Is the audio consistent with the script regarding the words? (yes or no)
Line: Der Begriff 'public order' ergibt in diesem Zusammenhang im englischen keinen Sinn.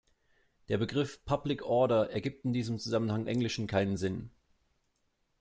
no